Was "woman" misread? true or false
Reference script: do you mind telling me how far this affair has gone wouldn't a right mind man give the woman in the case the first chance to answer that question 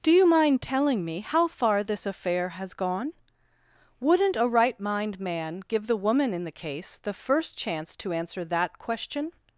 false